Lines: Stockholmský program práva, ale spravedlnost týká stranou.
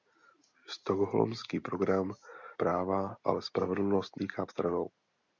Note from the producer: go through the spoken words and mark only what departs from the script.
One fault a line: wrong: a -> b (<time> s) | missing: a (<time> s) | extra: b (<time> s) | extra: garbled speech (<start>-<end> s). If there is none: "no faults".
no faults